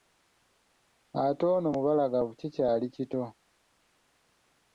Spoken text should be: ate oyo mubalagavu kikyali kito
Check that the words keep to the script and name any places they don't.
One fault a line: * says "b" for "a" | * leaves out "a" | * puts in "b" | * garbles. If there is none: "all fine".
* says "ono" for "oyo"